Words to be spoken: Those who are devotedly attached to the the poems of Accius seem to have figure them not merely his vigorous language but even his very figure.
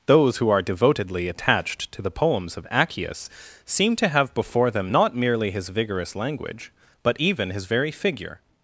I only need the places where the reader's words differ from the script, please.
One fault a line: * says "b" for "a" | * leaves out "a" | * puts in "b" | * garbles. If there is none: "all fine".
* leaves out "the"
* says "before" for "figure"